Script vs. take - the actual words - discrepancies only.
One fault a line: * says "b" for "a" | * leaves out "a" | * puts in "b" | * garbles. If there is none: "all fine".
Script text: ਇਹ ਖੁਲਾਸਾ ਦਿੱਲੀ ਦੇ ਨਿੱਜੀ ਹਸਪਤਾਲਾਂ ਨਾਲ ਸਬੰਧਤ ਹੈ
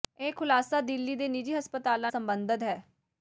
* leaves out "ਨਾਲ"